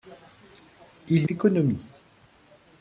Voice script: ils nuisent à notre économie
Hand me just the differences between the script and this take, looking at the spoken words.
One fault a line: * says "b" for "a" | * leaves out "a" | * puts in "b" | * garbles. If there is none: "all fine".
* leaves out "nuisent à notre"